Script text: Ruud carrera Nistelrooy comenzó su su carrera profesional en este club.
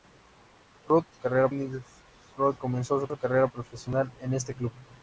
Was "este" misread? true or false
false